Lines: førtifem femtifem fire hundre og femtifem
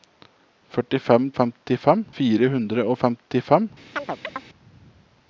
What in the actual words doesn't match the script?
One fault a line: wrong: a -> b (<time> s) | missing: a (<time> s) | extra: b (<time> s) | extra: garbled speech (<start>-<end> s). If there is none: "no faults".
no faults